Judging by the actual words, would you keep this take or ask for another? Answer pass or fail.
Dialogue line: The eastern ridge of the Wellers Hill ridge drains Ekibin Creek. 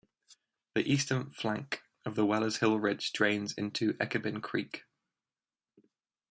fail